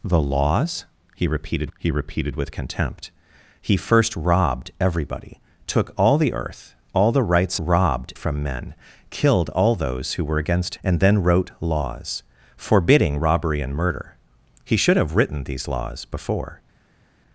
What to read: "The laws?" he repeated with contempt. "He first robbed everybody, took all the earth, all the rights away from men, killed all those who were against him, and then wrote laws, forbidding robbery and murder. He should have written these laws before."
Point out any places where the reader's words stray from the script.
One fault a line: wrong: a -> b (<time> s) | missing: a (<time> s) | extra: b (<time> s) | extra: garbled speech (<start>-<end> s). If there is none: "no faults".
extra: he repeated (1.8 s)
wrong: away -> robbed (7.6 s)
missing: him (10.7 s)